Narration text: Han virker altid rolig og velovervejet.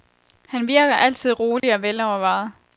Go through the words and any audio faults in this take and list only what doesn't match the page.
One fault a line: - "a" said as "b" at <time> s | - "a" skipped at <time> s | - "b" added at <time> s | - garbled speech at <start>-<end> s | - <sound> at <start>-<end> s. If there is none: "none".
- dropout at 1.6-1.6 s